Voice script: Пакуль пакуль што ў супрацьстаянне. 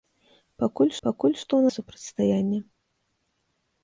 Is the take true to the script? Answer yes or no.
yes